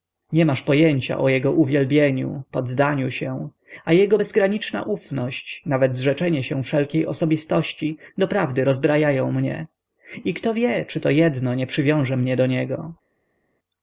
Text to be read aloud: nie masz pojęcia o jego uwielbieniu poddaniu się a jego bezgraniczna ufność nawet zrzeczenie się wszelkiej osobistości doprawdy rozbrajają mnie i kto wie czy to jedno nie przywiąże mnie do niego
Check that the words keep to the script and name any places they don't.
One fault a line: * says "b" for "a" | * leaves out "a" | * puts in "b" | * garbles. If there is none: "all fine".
all fine